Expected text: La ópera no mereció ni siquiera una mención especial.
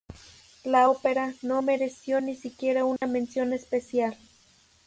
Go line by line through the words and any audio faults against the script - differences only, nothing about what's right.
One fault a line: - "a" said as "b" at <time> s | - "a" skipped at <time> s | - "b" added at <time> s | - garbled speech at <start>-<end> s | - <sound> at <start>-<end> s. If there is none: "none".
- dropout at 3.0-3.0 s